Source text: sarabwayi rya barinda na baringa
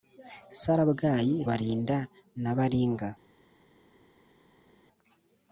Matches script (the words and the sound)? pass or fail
fail